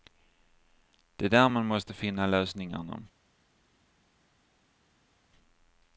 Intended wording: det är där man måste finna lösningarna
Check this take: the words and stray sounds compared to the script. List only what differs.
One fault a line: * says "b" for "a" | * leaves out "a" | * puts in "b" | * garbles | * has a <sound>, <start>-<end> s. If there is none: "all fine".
all fine